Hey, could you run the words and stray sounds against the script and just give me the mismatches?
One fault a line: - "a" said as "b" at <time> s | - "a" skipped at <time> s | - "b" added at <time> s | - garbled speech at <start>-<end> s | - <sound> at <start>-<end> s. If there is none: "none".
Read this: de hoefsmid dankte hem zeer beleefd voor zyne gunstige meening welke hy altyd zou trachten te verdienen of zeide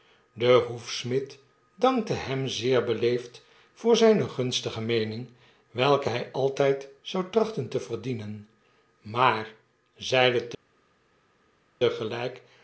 - "of" said as "maar" at 9.0 s